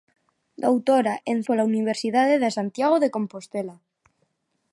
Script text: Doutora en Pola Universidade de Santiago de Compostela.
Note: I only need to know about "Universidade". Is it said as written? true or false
true